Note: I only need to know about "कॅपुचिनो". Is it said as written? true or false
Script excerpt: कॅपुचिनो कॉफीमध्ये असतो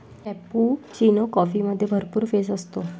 true